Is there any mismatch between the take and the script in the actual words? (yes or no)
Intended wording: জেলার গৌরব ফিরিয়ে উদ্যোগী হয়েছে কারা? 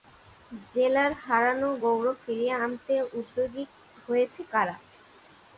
yes